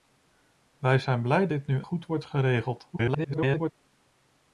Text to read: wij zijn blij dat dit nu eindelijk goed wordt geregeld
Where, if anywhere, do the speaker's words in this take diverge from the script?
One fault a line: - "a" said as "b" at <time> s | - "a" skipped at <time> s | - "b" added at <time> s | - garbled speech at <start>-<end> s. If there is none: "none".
- "dat" skipped at 1.5 s
- "eindelijk" skipped at 1.8 s
- garbled speech at 2.9-3.7 s